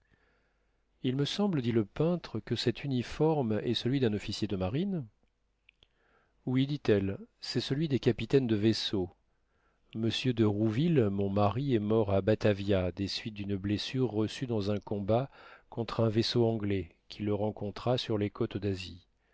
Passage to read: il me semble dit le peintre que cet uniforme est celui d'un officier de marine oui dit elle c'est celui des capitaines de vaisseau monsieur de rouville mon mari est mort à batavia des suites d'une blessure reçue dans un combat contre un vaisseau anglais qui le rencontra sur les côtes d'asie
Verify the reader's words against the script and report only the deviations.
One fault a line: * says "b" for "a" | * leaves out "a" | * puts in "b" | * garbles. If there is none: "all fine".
all fine